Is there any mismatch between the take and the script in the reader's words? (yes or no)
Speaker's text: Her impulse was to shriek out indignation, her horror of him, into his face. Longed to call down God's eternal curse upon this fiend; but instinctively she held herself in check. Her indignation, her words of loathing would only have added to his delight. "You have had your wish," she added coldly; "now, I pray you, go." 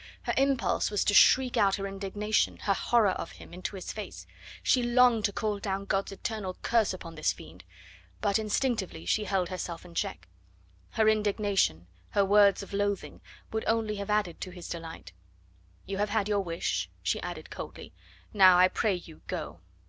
yes